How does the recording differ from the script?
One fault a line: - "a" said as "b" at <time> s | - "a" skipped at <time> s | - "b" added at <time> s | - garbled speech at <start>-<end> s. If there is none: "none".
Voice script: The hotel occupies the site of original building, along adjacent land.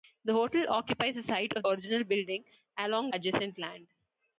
none